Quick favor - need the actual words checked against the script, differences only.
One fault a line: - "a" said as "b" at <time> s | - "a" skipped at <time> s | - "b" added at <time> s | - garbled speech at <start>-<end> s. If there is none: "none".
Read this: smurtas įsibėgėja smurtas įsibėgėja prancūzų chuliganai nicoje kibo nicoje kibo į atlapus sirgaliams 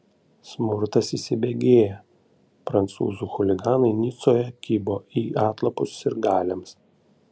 - "smurtas įsibėgėja" skipped at 2.0 s
- "nicoje kibo" skipped at 5.0 s